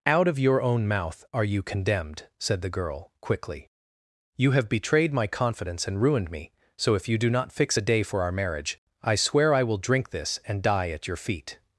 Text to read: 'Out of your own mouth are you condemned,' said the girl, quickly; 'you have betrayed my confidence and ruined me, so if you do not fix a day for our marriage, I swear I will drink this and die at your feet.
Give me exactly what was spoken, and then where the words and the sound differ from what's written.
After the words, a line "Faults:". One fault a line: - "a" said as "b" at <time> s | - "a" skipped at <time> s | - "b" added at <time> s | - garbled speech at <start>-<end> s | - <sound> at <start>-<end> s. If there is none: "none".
'Out of your own mouth are you condemned,' said the girl, quickly; 'you have betrayed my confidence and ruined me, so if you do not fix a day for our marriage, I swear I will drink this and die at your feet.
Faults:
none